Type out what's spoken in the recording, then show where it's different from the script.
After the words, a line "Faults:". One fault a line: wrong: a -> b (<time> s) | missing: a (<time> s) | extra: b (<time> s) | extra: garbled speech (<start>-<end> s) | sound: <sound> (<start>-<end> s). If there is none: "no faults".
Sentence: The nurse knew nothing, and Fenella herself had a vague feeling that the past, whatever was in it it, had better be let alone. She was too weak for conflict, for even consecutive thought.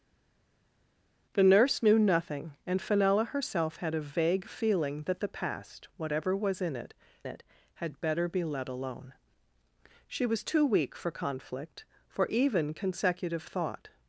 The nurse knew nothing, and Fenella herself had a vague feeling that the past, whatever was in it it, had better be let alone. She was too weak for conflict, for even consecutive thought.
Faults:
no faults